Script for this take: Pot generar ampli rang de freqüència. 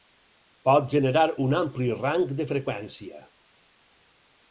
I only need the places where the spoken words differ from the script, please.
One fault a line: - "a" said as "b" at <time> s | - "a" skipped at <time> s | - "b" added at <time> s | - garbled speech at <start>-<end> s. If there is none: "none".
- "un" added at 1.4 s